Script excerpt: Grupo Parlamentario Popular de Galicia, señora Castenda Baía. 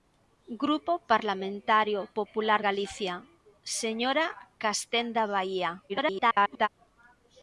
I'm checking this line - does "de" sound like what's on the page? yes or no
no